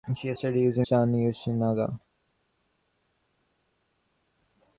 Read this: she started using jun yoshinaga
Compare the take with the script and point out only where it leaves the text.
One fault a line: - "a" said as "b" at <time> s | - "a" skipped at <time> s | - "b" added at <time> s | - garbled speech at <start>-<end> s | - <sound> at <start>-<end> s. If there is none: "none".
none